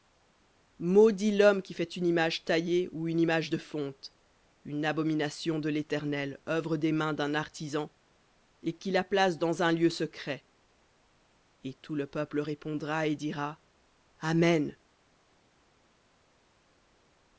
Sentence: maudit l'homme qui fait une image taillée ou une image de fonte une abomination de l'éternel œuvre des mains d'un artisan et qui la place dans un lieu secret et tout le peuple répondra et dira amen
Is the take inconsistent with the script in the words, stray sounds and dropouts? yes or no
no